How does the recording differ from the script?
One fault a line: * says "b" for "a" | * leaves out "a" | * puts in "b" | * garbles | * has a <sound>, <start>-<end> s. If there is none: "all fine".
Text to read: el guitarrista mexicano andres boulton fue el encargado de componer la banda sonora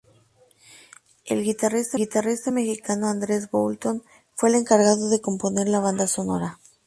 * puts in "guitarrista"